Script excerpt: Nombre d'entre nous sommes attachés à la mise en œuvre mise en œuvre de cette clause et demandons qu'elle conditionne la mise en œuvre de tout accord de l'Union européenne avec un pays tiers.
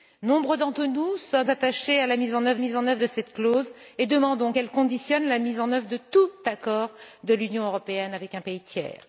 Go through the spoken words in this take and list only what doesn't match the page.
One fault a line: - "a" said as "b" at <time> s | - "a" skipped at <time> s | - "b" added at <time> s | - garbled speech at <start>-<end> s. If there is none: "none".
none